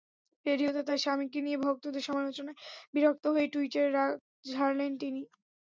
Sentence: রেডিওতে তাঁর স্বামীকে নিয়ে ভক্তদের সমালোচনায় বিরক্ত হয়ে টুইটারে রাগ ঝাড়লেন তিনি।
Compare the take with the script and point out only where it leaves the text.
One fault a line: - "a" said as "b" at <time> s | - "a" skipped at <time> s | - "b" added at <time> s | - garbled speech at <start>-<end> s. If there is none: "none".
none